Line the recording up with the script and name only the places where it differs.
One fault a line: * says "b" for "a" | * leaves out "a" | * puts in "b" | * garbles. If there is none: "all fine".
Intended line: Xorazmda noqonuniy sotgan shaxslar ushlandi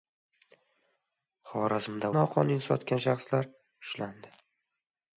all fine